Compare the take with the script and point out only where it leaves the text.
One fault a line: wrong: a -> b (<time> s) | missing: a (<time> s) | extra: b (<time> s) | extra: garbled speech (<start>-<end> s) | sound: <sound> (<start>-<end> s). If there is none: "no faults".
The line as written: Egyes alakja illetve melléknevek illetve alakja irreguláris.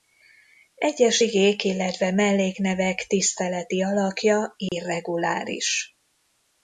wrong: alakja -> igék (1.2 s)
wrong: illetve -> tiszteleti (3.1 s)
sound: dropout (4.7-4.7 s)